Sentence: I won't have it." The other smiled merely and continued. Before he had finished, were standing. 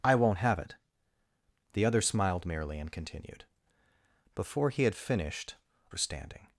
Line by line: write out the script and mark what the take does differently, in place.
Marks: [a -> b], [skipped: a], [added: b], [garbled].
I won't have it." The other smiled merely and continued. Before he had finished, were standing.